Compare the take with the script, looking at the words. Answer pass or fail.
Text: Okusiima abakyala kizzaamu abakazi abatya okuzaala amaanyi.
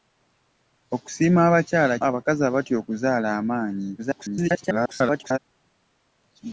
fail